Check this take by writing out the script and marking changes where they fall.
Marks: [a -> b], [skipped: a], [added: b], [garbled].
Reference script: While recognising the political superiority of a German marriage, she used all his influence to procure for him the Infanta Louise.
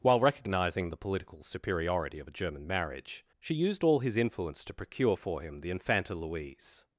While recognising the political superiority of a German marriage, she used all his influence to procure for him the Infanta Louise.